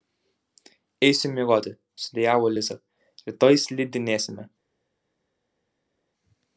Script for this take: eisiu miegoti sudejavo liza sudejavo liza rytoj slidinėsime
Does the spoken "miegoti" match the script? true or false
true